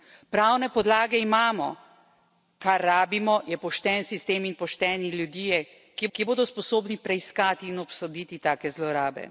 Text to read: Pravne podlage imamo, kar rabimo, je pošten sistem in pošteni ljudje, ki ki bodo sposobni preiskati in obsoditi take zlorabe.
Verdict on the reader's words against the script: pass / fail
pass